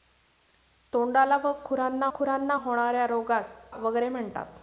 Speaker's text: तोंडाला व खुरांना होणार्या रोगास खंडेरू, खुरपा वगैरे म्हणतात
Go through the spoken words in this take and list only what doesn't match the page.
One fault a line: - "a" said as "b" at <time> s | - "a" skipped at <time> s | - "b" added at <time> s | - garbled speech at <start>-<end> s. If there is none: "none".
- "खुरांना" added at 2.1 s
- "खंडेरू खुरपा" skipped at 3.6 s